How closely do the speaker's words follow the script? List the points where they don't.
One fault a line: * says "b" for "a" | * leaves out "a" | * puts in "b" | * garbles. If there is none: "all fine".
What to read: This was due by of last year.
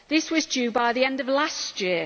* puts in "the end"